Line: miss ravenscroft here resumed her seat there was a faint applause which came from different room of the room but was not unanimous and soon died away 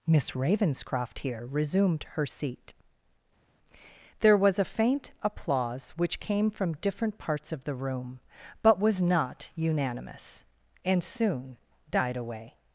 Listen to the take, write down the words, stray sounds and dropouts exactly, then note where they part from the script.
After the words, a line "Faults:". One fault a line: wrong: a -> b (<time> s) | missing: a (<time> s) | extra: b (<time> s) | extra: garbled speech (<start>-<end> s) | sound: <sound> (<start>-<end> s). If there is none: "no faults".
miss ravenscroft here resumed her seat there was a faint applause which came from different parts of the room but was not unanimous and soon died away
Faults:
wrong: room -> parts (7.2 s)